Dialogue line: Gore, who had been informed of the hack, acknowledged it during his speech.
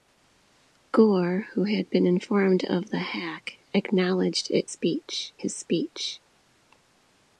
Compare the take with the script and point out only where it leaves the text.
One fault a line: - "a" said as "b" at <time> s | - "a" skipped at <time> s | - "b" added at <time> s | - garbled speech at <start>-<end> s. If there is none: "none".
- "during" said as "speech" at 4.7 s